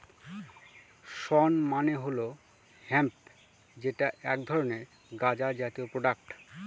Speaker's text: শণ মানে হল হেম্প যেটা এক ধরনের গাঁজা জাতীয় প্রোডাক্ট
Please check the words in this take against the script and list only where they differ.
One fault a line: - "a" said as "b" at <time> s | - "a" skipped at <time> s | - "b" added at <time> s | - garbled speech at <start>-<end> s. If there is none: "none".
none